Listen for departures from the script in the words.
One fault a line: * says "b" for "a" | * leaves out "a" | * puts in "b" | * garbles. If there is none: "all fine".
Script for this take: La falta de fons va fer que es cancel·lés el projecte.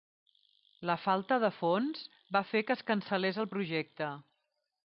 all fine